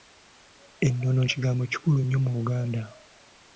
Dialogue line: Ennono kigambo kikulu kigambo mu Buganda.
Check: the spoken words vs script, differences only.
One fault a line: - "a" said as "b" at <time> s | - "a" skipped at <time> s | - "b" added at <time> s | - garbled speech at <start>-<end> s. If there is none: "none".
- "kigambo" said as "nnyo" at 2.0 s